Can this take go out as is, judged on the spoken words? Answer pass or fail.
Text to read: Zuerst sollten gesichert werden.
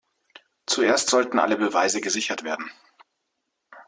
fail